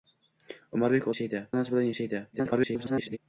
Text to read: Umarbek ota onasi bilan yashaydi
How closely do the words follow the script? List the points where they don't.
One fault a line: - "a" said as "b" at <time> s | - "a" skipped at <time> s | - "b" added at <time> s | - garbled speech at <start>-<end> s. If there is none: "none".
- "ota" said as "yashaydi" at 1.1 s
- garbled speech at 2.3-3.2 s